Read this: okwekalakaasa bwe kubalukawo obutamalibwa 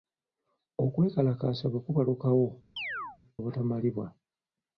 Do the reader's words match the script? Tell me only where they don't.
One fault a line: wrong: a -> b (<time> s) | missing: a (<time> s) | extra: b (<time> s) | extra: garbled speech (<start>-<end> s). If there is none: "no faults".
no faults